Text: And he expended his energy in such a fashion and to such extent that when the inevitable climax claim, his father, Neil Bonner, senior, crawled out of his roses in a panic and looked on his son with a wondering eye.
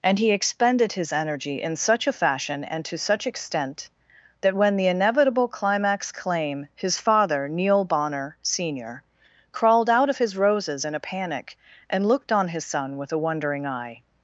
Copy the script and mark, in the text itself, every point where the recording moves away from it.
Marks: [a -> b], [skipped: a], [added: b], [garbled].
And he expended his energy in such a fashion and to such extent that when the inevitable climax claim, his father, Neil Bonner, senior, crawled out of his roses in a panic and looked on his son with a wondering eye.